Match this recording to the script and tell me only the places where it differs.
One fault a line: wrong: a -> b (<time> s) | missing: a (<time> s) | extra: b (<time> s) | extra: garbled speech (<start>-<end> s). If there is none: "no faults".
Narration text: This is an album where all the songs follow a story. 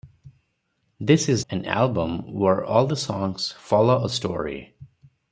no faults